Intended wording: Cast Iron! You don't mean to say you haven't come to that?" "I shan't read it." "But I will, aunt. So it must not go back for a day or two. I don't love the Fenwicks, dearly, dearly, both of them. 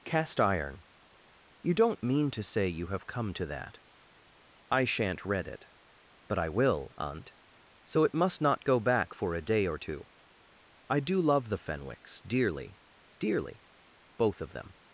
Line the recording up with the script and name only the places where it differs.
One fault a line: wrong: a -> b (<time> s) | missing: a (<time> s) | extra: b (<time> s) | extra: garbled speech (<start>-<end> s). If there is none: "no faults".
wrong: haven't -> have (2.9 s)
wrong: don't -> do (11.0 s)